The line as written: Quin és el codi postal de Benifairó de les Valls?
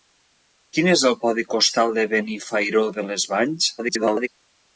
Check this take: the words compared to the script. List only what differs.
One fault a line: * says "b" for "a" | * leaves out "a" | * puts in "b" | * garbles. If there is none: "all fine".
* garbles